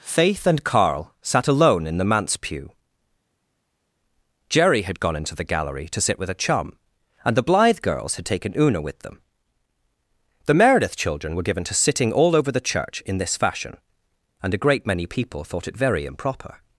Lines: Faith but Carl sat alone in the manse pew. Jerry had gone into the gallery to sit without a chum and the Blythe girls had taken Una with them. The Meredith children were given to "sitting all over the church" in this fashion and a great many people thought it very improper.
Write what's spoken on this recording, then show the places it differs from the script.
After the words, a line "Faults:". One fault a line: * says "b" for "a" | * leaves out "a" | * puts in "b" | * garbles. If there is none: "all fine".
Faith and Carl sat alone in the manse pew. Jerry had gone into the gallery to sit with a chum and the Blythe girls had taken Una with them. The Meredith children were given to "sitting all over the church" in this fashion and a great many people thought it very improper.
Faults:
* says "and" for "but"
* says "with" for "without"